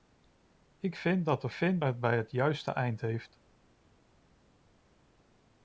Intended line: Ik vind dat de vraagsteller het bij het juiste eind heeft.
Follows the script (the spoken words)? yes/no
no